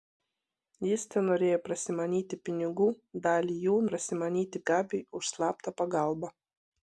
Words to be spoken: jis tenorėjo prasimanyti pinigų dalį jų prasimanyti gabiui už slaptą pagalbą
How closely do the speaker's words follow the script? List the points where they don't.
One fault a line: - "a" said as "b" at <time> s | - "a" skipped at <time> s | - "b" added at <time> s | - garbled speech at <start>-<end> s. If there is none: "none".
none